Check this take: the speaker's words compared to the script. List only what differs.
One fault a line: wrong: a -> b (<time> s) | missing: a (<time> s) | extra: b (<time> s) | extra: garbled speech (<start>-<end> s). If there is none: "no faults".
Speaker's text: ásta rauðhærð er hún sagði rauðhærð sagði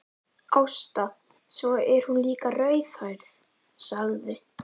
wrong: rauðhærð -> svo (1.6 s)
wrong: sagði -> líka (2.3 s)